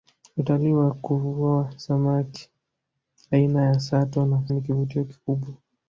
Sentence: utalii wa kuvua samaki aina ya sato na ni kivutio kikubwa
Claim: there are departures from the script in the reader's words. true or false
false